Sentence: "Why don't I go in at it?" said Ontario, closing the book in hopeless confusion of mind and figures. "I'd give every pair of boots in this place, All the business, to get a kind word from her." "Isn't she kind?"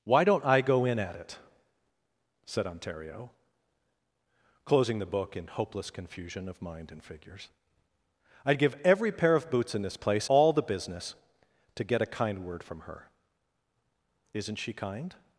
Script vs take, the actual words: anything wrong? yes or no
no